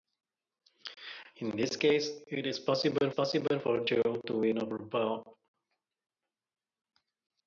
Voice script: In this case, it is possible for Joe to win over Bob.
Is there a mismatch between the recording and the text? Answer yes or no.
yes